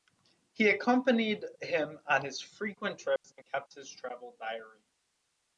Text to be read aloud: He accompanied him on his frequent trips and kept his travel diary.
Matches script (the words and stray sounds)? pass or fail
fail